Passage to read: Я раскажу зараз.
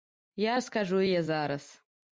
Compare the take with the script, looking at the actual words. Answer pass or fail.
fail